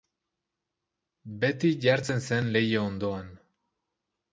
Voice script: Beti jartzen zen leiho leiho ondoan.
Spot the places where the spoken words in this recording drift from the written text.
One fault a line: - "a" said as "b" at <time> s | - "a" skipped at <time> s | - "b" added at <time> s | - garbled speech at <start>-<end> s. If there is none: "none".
- "leiho" skipped at 2.9 s